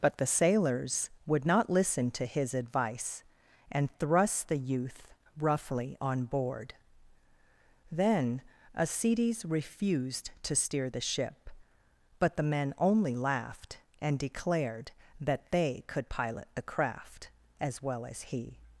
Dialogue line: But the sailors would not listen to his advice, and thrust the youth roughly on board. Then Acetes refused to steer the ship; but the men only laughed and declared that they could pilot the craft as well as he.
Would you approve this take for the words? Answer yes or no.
yes